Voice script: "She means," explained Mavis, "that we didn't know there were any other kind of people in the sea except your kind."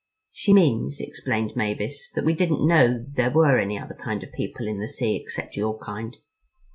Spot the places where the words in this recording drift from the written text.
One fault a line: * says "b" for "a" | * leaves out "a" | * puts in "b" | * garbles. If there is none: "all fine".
all fine